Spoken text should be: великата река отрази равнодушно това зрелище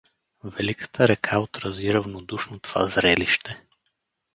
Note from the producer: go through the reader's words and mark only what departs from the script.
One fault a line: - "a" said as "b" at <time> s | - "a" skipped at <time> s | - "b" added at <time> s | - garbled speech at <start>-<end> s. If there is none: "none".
none